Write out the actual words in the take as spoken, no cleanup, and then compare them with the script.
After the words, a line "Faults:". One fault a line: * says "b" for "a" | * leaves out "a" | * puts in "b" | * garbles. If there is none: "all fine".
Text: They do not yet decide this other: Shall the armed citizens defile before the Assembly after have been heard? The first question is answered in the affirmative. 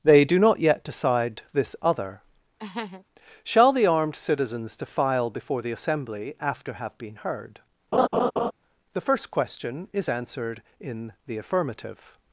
They do not yet decide this other: Shall the armed citizens defile before the Assembly after have been heard? The first question is answered in the affirmative.
Faults:
all fine